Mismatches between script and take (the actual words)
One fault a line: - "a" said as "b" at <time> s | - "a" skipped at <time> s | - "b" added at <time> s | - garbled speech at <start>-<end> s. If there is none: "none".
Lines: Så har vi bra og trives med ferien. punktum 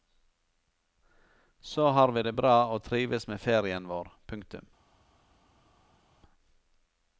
- "det" added at 2.2 s
- "vår" added at 3.9 s